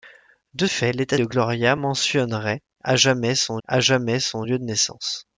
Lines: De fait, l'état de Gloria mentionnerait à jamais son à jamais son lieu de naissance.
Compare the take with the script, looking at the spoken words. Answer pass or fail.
pass